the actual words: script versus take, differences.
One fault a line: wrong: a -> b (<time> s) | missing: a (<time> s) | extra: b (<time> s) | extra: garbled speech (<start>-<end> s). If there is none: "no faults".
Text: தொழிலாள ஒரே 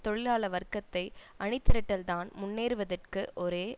extra: வர்க்கத்தை அணிதிரட்டல்தான் முன்னேறுவதற்கு (0.5 s)